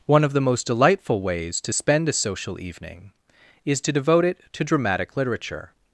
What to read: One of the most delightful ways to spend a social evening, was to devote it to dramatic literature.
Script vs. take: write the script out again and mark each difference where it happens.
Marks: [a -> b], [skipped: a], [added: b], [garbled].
One of the most delightful ways to spend a social evening, [was -> is] to devote it to dramatic literature.